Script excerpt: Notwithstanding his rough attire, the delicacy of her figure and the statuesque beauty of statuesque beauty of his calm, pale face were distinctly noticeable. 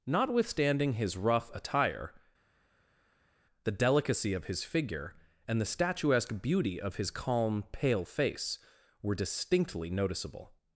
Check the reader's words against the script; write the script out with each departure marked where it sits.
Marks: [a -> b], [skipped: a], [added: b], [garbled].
Notwithstanding his rough attire, the delicacy of [her -> his] figure and the statuesque beauty of [skipped: statuesque beauty of] his calm, pale face were distinctly noticeable.